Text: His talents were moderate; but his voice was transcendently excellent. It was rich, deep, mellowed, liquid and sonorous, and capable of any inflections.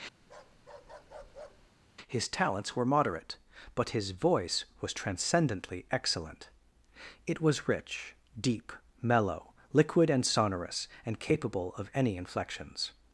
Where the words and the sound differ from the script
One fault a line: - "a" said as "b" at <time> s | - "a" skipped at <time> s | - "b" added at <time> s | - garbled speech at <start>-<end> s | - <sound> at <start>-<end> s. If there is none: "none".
- bark at 0.2-1.7 s
- "mellowed" said as "mellow" at 9.0 s